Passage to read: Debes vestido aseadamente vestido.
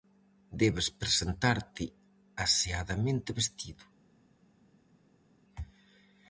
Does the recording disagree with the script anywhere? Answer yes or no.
yes